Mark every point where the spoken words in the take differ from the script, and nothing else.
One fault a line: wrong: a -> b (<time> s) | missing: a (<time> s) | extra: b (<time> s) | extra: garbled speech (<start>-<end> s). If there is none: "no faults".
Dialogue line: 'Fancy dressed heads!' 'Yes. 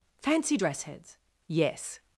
wrong: dressed -> dress (0.6 s)